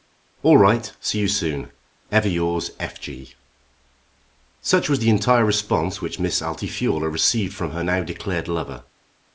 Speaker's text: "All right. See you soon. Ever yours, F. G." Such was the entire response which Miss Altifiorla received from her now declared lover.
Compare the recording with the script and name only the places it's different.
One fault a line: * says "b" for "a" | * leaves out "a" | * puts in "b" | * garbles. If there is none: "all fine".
all fine